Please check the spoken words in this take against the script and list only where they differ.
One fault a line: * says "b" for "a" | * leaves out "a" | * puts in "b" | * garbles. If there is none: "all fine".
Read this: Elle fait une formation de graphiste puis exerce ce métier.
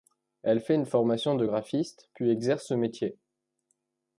all fine